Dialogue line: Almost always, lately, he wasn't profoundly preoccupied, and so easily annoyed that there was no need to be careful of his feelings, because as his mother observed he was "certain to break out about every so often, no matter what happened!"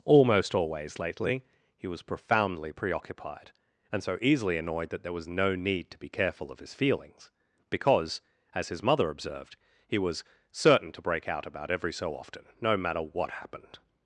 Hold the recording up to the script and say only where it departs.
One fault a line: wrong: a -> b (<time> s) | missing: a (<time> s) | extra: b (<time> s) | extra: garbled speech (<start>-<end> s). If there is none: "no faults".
wrong: wasn't -> was (1.9 s)